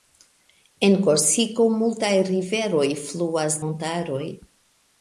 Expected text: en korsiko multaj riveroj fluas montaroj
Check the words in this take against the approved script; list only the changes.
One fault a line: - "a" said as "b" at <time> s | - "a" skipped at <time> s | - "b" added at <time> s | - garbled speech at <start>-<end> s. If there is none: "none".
none